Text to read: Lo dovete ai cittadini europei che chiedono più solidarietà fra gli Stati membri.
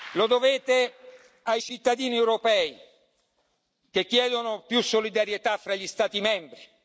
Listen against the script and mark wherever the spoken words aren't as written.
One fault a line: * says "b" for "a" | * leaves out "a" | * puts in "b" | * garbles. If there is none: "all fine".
all fine